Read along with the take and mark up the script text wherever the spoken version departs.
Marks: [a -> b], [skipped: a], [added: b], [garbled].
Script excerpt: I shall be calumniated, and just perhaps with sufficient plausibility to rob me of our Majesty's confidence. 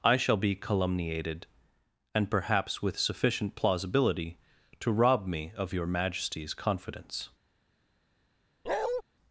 I shall be calumniated, and [skipped: just] perhaps with sufficient plausibility to rob me of [our -> your] Majesty's confidence.